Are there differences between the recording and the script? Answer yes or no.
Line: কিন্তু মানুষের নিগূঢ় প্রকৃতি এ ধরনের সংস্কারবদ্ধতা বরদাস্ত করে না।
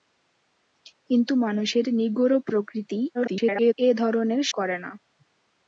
yes